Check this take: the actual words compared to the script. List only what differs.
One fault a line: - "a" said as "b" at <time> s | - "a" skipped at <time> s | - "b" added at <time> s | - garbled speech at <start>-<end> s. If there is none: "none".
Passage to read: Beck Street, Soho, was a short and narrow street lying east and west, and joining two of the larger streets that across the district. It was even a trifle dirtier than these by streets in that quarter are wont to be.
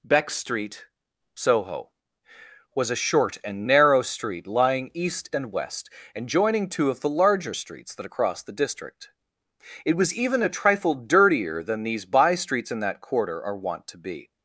none